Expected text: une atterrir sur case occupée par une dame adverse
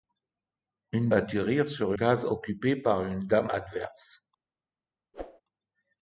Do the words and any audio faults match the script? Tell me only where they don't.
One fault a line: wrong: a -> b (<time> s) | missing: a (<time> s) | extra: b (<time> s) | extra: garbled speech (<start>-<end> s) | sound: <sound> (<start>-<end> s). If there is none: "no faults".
sound: whoosh (5.1-5.4 s)